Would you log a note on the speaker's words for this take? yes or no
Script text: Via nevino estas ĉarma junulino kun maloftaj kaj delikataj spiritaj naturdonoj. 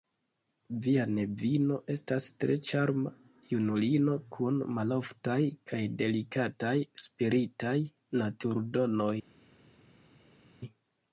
yes